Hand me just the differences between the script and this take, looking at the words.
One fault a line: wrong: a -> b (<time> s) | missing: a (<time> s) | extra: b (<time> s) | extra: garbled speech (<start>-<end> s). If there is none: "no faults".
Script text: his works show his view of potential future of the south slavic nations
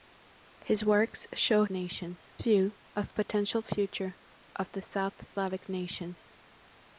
wrong: his -> nations (1.7 s)